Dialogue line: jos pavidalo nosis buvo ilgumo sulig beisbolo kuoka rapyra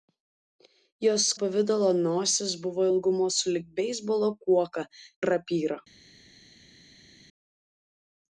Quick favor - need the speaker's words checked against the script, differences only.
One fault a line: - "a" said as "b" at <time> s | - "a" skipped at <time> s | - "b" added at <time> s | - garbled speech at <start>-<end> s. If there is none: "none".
none